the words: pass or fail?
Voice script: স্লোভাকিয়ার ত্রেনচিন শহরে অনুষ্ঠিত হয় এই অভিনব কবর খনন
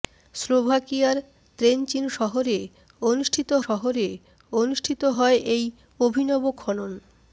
fail